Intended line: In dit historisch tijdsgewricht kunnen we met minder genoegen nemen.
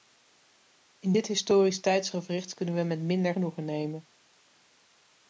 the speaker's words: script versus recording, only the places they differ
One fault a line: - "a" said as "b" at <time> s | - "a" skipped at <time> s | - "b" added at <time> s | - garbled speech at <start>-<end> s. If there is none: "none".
none